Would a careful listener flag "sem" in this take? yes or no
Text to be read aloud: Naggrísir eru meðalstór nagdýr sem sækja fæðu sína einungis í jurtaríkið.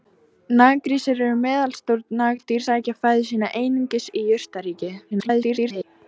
yes